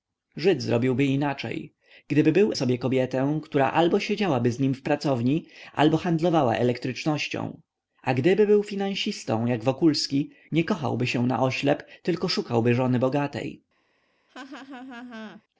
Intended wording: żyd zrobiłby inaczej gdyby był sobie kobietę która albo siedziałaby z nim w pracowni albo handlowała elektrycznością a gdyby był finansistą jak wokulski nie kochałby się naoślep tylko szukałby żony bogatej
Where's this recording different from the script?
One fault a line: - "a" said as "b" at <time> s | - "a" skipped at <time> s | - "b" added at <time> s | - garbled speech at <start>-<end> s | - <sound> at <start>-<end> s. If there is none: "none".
- laugh at 14.3-15.4 s